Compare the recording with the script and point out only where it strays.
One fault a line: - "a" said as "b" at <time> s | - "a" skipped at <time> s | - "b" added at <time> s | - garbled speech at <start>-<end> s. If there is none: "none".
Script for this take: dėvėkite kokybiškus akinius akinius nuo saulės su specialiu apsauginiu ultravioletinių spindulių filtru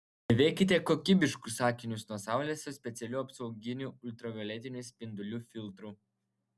- "akinius" skipped at 2.1 s